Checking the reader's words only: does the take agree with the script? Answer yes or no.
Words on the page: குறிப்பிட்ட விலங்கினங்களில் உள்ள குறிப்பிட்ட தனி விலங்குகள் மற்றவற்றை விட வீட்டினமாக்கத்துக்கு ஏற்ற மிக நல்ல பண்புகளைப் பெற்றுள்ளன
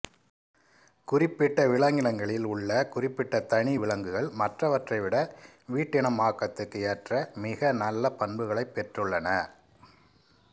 yes